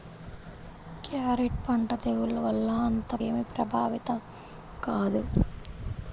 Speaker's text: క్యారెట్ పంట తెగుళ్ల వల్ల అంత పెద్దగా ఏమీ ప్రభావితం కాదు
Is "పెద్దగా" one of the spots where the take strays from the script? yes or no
yes